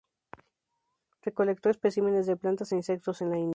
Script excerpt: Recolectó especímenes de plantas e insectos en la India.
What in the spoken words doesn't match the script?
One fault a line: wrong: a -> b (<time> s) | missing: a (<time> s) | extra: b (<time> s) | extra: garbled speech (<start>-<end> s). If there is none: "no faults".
no faults